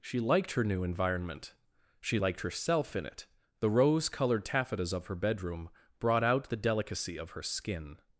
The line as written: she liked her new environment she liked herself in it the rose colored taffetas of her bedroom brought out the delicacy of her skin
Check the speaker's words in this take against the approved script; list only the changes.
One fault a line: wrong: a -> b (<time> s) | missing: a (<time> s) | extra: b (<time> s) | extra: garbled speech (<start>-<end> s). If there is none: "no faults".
no faults